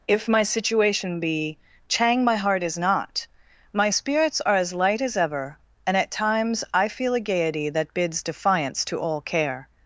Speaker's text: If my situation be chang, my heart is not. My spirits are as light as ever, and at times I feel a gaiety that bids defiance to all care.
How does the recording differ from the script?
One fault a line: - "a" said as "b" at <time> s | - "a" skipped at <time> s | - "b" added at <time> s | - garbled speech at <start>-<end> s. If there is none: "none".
none